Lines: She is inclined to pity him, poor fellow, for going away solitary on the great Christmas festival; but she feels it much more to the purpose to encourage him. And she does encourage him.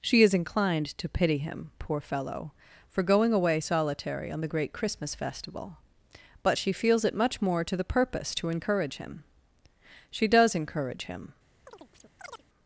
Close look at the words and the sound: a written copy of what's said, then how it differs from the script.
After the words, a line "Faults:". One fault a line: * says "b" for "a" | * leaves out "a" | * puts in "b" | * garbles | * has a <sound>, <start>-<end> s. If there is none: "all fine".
She is inclined to pity him, poor fellow, for going away solitary on the great Christmas festival; but she feels it much more to the purpose to encourage him. she does encourage him.
Faults:
* leaves out "And"
* has a chirp, 11.7-12.4 s